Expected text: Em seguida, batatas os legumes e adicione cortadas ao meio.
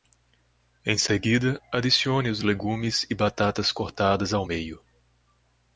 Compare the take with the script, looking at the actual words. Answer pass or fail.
fail